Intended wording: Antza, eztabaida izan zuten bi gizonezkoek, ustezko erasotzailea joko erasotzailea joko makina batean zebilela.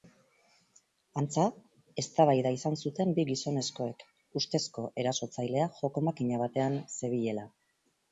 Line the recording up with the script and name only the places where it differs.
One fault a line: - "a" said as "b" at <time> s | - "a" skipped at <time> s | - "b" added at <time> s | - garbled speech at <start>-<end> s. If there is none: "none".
- "erasotzailea joko" skipped at 6.1 s